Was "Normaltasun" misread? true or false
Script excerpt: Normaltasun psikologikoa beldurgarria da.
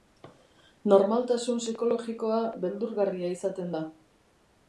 false